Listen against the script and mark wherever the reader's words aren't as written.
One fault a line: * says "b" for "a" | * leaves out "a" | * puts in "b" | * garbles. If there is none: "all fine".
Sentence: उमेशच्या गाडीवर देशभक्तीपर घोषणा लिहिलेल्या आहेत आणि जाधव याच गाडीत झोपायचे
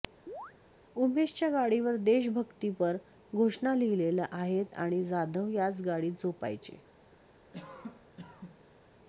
all fine